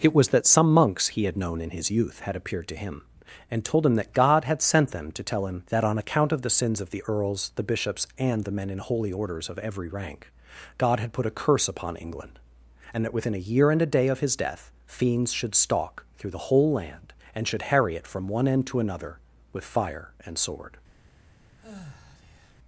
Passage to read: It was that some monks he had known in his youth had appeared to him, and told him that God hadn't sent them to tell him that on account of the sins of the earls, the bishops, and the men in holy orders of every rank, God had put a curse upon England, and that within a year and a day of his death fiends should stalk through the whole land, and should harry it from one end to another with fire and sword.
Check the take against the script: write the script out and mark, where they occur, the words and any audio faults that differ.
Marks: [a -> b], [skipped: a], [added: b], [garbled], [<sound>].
It was that some monks he had known in his youth had appeared to him, and told him that God [hadn't -> had] sent them to tell him that on account of the sins of the earls, the bishops, and the men in holy orders of every rank, God had put a curse upon England, and that within a year and a day of his death fiends should stalk through the whole land, and should harry it from one end to another with fire and sword. [sigh]